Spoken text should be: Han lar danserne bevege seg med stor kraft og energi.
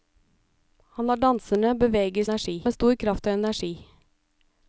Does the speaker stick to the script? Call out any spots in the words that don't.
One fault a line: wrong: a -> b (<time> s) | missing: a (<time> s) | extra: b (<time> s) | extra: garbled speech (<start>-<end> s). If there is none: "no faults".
wrong: seg -> energi (2.2 s)